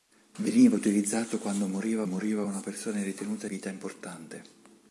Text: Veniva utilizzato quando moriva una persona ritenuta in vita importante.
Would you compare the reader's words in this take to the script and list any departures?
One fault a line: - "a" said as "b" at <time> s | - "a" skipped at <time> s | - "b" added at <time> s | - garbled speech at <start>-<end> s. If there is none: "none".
- "moriva" added at 2.0 s
- "in" skipped at 3.5 s